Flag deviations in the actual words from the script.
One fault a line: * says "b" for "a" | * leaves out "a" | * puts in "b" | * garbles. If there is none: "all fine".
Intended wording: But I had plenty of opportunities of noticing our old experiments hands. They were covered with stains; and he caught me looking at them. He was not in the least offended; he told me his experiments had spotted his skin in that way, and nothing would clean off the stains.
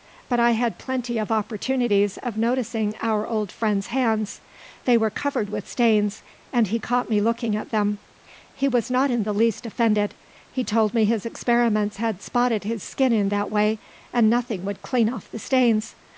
* says "friend's" for "experiments"